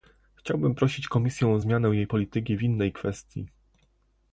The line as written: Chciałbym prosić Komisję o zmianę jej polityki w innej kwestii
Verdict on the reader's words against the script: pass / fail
pass